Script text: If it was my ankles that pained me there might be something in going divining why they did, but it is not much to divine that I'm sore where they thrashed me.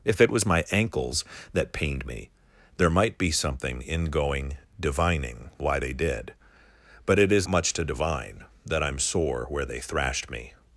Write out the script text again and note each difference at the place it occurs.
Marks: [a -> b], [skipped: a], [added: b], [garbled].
If it was my ankles that pained me there might be something in going divining why they did, but it is [skipped: not] much to divine that I'm sore where they thrashed me.